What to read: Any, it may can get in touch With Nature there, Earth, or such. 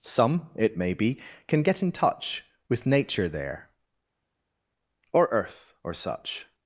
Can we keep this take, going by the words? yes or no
no